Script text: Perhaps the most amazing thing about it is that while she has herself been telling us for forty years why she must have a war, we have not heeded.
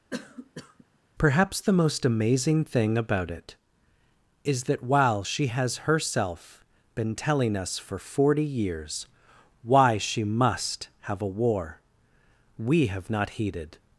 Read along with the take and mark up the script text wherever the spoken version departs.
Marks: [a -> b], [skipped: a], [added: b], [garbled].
Perhaps the most amazing thing about it is that while she has herself been telling us for forty years why she must have a war, we have not heeded.